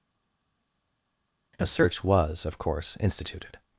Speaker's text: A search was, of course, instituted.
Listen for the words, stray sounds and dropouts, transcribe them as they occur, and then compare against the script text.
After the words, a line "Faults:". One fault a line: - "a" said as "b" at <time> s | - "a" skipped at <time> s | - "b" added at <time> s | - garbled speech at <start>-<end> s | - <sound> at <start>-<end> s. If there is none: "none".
A search was, of course, instituted.
Faults:
none